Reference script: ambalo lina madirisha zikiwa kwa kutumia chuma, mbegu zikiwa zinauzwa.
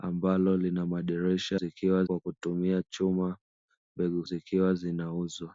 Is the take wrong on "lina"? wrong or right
right